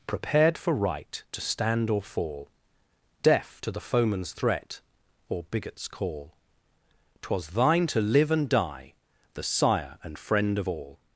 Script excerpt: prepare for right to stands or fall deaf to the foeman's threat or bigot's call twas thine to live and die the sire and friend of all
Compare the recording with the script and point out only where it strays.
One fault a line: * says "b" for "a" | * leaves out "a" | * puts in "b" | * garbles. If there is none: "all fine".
* says "prepared" for "prepare"
* says "stand" for "stands"